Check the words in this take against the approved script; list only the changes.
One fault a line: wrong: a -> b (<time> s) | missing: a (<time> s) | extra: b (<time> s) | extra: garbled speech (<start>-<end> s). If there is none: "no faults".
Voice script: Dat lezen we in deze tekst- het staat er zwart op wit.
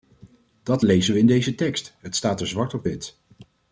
no faults